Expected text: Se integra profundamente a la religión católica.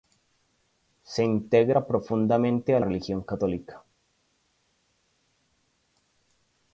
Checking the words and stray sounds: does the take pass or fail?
fail